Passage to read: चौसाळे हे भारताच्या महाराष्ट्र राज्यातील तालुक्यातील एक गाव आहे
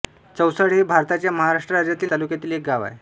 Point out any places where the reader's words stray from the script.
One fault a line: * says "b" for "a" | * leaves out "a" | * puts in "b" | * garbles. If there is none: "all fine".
all fine